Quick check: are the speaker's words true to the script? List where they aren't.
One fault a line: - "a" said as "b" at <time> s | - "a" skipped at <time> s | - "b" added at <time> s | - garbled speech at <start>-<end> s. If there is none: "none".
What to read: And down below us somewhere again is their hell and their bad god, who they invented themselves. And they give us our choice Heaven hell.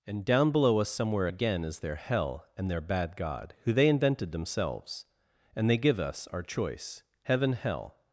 none